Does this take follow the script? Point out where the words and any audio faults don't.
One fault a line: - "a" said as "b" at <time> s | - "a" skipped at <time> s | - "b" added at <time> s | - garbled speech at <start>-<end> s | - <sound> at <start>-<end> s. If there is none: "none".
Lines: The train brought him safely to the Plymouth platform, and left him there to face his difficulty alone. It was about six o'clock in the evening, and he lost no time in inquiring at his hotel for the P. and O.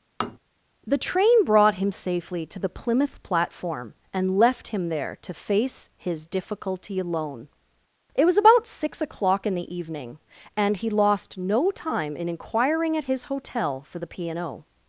- tap at 0.2-0.4 s